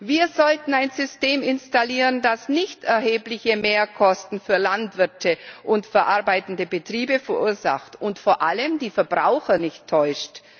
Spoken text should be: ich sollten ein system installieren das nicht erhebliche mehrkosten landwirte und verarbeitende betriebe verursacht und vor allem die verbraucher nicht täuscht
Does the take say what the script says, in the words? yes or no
no